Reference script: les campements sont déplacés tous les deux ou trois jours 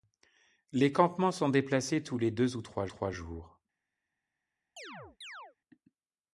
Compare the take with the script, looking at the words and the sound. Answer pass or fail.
fail